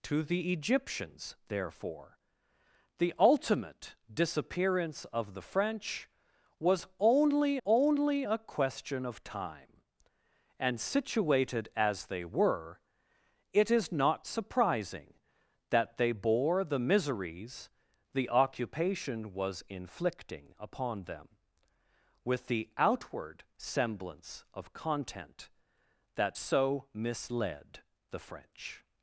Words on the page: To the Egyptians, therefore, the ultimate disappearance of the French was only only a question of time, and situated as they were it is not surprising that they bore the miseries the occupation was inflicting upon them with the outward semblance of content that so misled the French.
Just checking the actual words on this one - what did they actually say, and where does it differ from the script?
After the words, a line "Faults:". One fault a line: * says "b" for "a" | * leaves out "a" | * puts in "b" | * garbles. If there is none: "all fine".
To the Egyptians, therefore, the ultimate disappearance of the French was only only a question of time, and situated as they were it is not surprising that they bore the miseries the occupation was inflicting upon them with the outward semblance of content that so misled the French.
Faults:
all fine